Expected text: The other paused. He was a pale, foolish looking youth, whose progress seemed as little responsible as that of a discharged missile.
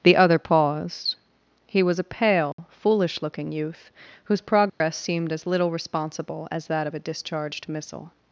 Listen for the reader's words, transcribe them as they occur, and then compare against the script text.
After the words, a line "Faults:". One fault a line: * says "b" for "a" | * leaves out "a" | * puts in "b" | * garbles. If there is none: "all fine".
The other paused. He was a pale, foolish looking youth, whose progress seemed as little responsible as that of a discharged missile.
Faults:
all fine